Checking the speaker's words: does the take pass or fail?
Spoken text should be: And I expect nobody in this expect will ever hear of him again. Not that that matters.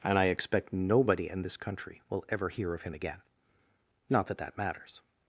fail